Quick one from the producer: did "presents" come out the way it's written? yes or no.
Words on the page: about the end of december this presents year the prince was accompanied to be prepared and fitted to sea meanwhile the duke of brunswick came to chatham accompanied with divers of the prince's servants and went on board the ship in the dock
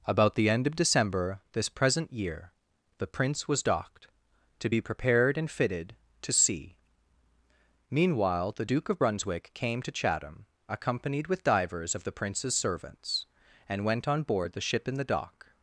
no